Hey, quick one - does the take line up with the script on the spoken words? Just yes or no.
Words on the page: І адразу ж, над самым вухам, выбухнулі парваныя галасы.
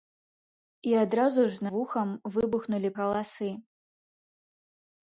no